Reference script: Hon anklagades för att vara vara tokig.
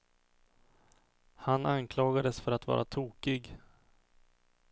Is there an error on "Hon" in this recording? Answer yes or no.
yes